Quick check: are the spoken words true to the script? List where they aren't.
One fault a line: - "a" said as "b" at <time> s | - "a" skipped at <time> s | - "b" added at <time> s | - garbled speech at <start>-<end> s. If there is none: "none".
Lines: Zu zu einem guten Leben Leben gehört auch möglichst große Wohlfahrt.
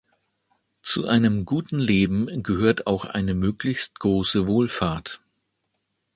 - "zu" skipped at 1.1 s
- "Leben" skipped at 2.4 s
- "eine" added at 3.0 s